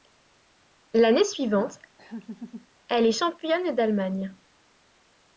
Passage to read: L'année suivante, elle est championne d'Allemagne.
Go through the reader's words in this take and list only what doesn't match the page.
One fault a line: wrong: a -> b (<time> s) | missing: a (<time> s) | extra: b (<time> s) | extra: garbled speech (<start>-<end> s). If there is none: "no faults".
no faults